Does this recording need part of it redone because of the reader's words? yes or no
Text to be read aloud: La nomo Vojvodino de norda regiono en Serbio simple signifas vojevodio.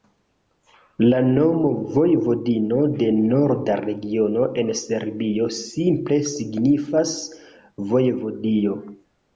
no